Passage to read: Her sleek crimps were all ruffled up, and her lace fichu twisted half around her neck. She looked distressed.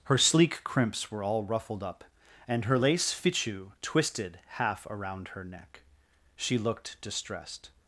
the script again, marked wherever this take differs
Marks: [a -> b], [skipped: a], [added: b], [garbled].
Her sleek crimps were all ruffled up, and her lace fichu twisted half around her neck. She looked distressed.